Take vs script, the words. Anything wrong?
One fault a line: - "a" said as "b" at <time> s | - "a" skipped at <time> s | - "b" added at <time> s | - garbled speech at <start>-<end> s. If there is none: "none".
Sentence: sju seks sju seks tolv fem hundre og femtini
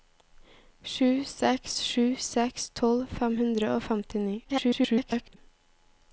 - garbled speech at 4.4-5.4 s